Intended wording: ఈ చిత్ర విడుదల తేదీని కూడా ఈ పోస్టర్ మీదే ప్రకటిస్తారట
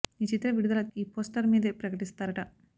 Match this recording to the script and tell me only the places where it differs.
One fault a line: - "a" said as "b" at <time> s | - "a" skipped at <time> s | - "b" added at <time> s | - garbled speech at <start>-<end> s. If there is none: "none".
- "తేదీని కూడా" skipped at 0.8 s